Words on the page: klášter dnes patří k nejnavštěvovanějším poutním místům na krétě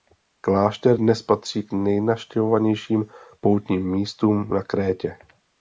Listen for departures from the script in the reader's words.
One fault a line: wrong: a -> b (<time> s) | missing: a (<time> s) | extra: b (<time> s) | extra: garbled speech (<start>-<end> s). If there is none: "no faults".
no faults